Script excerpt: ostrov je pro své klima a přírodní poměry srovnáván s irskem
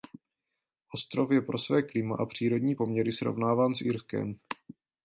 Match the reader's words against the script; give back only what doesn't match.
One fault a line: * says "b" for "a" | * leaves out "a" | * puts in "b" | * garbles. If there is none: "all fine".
all fine